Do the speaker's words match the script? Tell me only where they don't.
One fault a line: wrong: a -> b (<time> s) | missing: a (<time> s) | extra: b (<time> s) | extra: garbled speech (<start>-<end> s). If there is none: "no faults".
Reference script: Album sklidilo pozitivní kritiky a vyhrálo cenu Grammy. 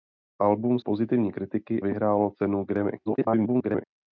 missing: sklidilo (0.8 s)
missing: a (1.8 s)
extra: garbled speech (3.1-3.8 s)